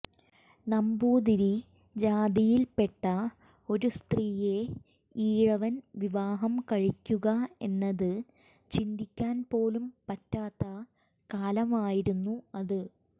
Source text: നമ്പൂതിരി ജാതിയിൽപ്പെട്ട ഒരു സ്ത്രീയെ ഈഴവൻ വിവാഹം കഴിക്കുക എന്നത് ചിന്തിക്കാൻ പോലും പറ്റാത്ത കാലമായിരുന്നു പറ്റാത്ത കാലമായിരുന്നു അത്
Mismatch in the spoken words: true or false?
true